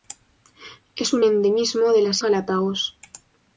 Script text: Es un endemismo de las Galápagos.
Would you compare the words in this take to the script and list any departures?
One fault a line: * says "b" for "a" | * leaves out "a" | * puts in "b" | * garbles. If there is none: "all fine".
all fine